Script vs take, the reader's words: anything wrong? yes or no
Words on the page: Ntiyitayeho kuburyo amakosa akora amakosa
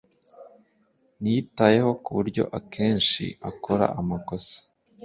yes